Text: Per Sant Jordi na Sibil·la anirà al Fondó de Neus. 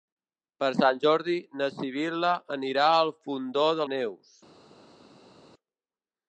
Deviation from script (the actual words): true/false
false